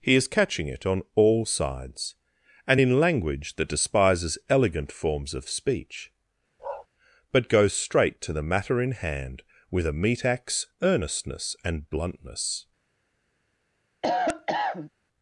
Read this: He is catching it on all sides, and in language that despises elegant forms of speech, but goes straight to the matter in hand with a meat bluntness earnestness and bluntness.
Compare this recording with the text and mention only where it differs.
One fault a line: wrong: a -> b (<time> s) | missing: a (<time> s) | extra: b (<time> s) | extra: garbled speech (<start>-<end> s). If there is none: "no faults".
wrong: bluntness -> axe (10.2 s)